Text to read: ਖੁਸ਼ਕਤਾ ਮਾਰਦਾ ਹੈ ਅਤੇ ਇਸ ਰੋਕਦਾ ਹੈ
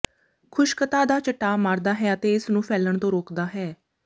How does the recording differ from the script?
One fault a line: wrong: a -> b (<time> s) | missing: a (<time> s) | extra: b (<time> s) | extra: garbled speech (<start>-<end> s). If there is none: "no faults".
extra: ਦਾ ਚਟਾਅ (1.1 s)
extra: ਨੂੰ ਫੈਲਣ ਤੋਂ (2.5 s)